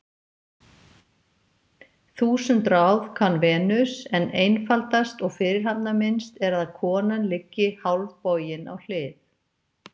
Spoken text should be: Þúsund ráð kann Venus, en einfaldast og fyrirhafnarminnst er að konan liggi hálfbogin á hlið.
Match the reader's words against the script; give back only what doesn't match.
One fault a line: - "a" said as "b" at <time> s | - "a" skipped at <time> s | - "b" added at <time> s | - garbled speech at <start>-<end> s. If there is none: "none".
none